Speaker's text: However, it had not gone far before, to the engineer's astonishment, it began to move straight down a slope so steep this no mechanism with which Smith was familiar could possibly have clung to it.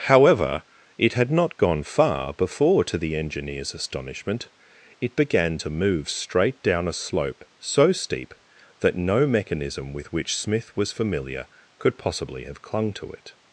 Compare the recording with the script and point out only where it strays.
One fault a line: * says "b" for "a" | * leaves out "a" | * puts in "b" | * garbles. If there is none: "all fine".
* says "that" for "this"